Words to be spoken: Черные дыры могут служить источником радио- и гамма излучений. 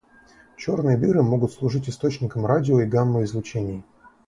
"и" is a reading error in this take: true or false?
false